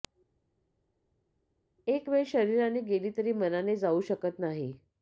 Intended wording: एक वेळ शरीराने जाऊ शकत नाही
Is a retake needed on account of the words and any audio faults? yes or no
yes